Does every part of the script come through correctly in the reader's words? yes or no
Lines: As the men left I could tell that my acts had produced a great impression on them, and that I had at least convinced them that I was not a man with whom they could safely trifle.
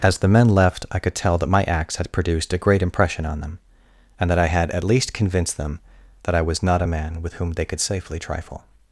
yes